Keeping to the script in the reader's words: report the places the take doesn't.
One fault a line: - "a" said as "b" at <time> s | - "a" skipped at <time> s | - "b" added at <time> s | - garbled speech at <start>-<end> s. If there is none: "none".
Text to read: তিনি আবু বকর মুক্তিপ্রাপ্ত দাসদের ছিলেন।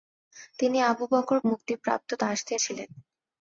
none